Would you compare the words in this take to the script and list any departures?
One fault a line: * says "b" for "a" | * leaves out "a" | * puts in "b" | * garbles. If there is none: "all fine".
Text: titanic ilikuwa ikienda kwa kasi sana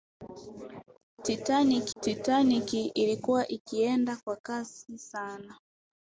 * puts in "titanic"